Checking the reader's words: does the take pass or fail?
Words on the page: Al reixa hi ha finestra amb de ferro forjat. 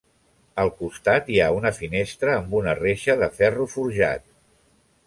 fail